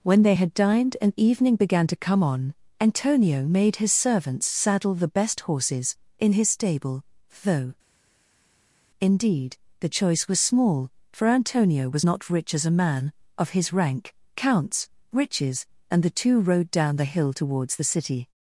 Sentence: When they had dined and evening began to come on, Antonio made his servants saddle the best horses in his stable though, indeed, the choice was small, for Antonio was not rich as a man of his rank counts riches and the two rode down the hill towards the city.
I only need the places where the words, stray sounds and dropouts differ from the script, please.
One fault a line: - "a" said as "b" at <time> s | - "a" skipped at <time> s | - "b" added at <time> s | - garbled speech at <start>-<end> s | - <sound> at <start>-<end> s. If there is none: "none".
none